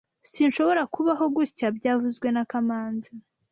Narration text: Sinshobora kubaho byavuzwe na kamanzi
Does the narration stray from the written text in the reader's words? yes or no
yes